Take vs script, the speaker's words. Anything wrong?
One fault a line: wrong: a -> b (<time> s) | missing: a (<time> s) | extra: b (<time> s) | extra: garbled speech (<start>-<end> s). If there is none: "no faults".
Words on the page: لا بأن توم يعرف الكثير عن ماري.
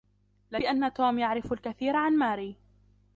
no faults